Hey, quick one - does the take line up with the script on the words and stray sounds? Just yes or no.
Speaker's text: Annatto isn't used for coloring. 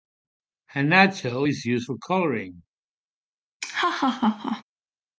no